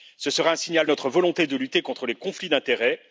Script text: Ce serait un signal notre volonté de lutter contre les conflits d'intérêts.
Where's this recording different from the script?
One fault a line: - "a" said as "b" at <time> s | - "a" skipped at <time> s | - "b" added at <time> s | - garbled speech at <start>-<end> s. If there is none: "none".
none